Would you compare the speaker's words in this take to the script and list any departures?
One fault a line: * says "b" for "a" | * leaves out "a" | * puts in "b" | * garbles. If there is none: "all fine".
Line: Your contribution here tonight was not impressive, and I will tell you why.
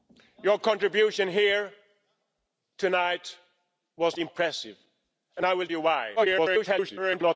* leaves out "not"
* leaves out "tell"
* garbles